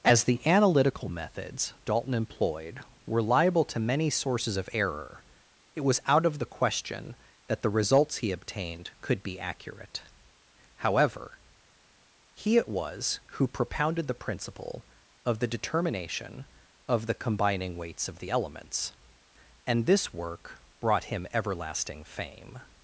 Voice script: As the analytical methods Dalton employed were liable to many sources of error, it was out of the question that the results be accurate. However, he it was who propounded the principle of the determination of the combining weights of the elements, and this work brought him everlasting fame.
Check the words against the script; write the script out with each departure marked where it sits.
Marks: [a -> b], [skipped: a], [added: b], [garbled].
As the analytical methods Dalton employed were liable to many sources of error, it was out of the question that the results [added: he obtained could] be accurate. However, he it was who propounded the principle of the determination of the combining weights of the elements, and this work brought him everlasting fame.